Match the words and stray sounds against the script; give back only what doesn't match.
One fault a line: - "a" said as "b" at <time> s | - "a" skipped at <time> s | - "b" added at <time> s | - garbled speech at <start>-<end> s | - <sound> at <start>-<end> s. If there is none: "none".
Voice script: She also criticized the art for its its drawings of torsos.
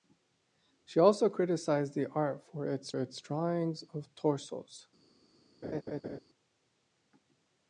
- laugh at 5.6-6.2 s